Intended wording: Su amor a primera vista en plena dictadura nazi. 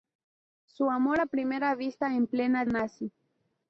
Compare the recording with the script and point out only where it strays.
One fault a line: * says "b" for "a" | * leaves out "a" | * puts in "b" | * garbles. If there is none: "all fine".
* leaves out "dictadura"